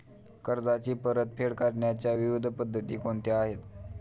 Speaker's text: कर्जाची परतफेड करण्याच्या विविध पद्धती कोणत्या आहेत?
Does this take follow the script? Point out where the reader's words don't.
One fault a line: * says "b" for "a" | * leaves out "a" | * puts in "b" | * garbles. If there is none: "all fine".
all fine